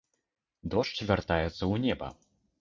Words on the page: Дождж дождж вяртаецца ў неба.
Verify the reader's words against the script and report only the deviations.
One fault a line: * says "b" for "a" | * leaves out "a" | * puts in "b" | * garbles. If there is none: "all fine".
* leaves out "дождж"